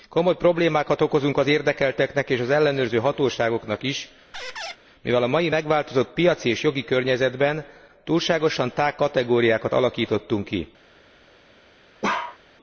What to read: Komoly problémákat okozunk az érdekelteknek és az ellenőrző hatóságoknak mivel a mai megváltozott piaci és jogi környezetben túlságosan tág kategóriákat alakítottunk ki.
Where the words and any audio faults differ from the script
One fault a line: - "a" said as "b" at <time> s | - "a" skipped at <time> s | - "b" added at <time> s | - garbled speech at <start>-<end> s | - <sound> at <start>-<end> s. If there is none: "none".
- "is" added at 3.8 s
- squeak at 4.3-4.8 s
- bark at 12.0-12.4 s